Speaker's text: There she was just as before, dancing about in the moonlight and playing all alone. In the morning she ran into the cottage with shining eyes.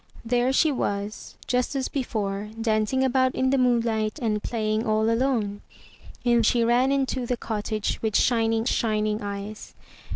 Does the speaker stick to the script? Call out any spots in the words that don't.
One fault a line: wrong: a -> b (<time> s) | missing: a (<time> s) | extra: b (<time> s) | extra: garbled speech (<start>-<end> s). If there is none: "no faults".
missing: the morning (6.4 s)
extra: shining (8.7 s)